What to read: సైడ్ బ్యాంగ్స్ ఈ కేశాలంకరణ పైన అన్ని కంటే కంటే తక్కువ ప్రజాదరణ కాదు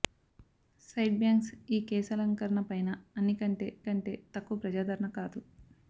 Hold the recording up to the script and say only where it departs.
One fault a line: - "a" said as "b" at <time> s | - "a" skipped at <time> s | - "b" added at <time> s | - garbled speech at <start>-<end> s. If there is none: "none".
none